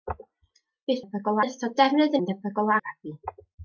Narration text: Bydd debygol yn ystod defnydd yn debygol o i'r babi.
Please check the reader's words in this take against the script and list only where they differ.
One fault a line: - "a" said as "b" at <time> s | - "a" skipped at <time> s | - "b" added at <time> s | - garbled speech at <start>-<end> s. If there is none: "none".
none